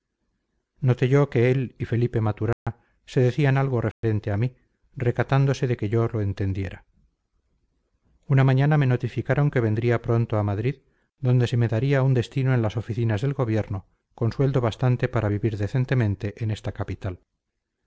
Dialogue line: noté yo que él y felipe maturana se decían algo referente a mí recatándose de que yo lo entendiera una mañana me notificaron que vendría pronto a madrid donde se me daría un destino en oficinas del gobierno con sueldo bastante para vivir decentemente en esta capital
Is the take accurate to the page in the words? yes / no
no